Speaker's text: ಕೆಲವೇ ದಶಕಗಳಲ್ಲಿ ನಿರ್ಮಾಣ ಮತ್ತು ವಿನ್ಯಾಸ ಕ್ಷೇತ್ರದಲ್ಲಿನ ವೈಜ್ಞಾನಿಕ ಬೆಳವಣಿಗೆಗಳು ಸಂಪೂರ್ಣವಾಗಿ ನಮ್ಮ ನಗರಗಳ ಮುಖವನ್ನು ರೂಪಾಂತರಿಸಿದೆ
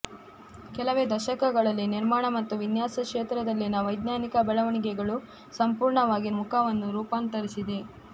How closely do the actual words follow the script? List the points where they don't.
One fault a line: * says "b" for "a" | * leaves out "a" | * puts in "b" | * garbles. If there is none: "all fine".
* leaves out "ನಮ್ಮ ನಗರಗಳ"